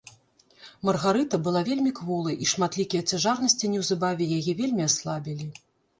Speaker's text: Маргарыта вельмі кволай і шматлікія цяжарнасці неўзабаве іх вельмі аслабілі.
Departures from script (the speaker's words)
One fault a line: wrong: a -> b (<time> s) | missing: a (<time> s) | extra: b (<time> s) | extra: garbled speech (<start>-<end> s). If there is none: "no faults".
extra: была (1.5 s)
wrong: іх -> яе (4.4 s)